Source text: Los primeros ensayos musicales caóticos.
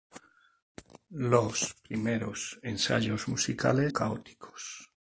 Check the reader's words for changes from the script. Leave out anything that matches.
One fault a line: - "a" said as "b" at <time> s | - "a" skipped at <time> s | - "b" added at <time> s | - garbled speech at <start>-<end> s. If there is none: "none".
none